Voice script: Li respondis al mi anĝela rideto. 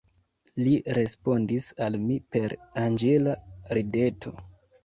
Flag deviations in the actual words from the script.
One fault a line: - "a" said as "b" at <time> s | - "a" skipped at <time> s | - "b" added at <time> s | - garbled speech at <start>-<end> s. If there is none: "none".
- "per" added at 2.4 s